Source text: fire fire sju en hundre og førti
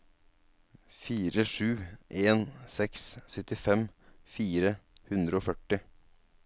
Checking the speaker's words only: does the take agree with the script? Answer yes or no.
no